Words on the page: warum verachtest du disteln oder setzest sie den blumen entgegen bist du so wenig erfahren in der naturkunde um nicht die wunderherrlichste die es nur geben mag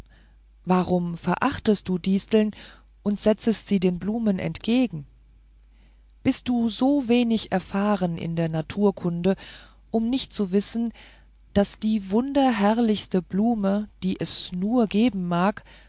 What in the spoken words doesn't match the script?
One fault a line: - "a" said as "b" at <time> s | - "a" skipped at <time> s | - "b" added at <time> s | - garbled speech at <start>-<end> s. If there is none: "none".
- "oder" said as "und" at 3.0 s
- "zu wissen daß" added at 10.3 s
- "blume" added at 13.2 s